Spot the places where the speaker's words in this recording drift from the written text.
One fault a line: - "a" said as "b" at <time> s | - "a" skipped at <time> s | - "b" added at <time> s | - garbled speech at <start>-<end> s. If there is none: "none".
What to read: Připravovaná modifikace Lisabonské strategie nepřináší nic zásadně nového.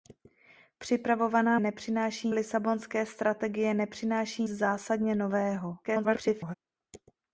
- "modifikace" said as "nepřináší" at 1.6 s
- "nic" skipped at 4.4 s
- garbled speech at 5.8-6.5 s